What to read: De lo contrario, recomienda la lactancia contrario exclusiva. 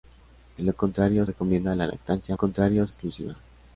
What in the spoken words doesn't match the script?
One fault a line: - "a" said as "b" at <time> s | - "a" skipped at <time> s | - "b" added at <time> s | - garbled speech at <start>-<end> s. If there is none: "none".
none